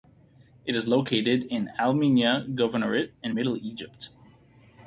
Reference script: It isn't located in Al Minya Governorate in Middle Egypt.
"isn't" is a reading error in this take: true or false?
true